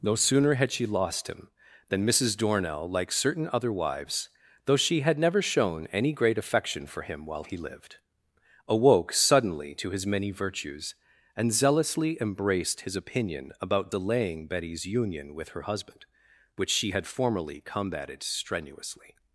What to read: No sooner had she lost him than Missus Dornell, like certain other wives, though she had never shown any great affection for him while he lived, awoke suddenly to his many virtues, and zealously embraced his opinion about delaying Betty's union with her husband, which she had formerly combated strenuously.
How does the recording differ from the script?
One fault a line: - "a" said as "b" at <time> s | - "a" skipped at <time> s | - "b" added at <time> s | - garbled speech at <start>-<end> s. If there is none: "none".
none